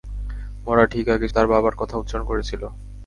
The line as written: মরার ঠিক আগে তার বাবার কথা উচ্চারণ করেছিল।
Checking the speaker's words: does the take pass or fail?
pass